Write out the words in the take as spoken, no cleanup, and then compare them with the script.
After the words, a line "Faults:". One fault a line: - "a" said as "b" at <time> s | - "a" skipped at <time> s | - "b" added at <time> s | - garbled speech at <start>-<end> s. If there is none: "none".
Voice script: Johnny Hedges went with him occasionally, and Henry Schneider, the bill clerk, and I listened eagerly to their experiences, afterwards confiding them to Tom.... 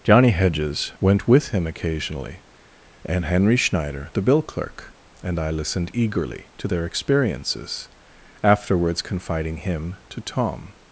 Johnny Hedges went with him occasionally, and Henry Schneider, the bill clerk, and I listened eagerly to their experiences, afterwards confiding him to Tom....
Faults:
- "them" said as "him" at 9.6 s